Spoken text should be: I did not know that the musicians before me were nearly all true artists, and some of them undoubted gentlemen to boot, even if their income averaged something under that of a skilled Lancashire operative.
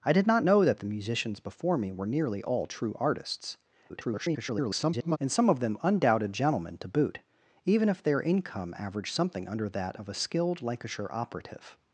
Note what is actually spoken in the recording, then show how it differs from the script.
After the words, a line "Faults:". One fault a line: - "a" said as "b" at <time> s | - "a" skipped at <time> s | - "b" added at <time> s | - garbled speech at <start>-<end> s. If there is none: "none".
I did not know that the musicians before me were nearly all true artists, [garbled] and some of them undoubted gentlemen to boot, even if their income averaged something under that of a skilled Lancashire operative.
Faults:
- garbled speech at 3.9-5.2 s